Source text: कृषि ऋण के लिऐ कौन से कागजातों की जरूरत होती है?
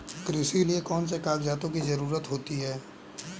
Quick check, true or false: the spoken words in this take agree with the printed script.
false